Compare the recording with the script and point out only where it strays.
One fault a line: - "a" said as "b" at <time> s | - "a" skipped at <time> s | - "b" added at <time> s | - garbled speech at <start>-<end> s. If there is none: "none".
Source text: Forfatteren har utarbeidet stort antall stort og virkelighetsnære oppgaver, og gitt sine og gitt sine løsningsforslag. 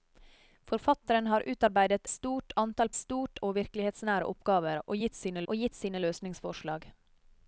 none